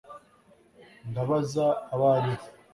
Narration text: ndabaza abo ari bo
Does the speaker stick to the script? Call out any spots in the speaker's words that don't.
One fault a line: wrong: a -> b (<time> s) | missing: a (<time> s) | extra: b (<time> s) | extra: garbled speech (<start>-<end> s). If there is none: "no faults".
no faults